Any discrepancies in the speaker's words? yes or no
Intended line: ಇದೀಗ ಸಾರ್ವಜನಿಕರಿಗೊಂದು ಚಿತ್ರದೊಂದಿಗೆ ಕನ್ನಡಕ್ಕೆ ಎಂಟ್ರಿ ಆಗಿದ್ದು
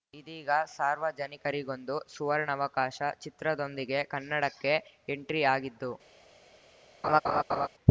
yes